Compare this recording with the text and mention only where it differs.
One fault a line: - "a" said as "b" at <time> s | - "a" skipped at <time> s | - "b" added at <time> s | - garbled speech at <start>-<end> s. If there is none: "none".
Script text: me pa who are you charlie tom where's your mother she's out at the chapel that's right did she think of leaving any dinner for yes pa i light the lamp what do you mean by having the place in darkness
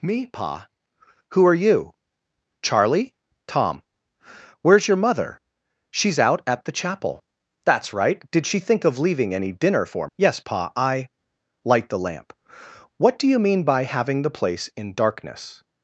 none